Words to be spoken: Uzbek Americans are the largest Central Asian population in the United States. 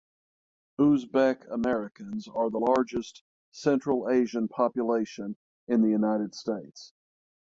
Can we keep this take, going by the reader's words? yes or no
yes